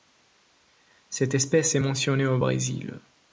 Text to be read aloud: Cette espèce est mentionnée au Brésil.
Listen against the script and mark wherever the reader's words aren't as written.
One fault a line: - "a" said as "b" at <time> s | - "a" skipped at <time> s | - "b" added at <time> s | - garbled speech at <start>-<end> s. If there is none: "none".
none